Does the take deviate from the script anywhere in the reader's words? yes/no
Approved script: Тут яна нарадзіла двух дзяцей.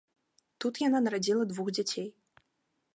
no